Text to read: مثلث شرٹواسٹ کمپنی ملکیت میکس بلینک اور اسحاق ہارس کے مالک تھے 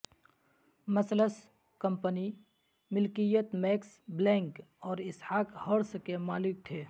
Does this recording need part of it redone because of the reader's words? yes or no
yes